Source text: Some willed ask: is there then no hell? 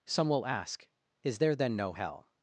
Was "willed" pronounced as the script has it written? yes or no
no